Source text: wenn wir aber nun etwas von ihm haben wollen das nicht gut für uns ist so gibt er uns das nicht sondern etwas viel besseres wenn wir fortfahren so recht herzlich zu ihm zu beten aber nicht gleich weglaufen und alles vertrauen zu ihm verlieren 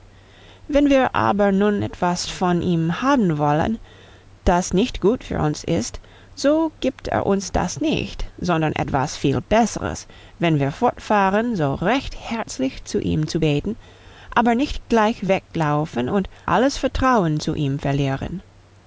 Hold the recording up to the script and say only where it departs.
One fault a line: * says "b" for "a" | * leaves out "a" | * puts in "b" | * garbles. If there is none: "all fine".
all fine